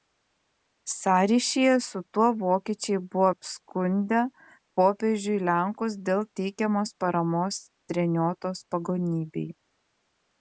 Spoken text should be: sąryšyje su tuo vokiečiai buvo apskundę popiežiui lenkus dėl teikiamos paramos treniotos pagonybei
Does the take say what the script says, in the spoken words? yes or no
yes